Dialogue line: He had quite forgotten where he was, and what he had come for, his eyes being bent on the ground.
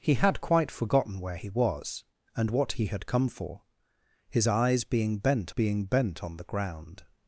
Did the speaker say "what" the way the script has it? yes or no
yes